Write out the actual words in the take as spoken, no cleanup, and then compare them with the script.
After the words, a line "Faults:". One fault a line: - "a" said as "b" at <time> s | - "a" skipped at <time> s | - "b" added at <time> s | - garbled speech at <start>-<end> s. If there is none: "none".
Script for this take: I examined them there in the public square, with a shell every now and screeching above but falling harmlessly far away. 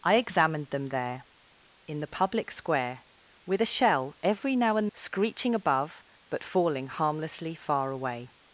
I examined them there in the public square, with a shell every now and screeching above but falling harmlessly far away.
Faults:
none